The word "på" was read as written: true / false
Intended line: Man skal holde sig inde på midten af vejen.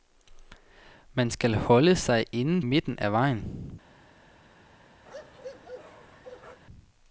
false